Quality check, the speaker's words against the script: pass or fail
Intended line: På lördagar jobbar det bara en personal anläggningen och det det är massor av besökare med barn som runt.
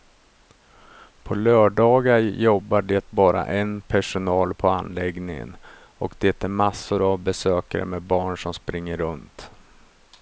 fail